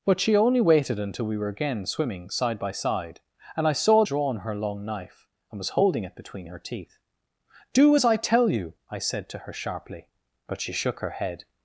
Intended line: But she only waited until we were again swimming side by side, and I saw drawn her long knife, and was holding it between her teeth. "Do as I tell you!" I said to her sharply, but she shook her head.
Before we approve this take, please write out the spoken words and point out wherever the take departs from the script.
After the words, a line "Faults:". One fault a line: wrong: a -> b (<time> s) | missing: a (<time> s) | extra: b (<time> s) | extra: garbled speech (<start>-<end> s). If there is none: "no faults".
But she only waited until we were again swimming side by side, and I saw drawn her long knife, and was holding it between her teeth. "Do as I tell you!" I said to her sharply, but she shook her head.
Faults:
no faults